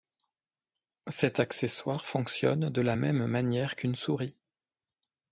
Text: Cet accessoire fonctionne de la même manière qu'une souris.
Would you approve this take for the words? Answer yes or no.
yes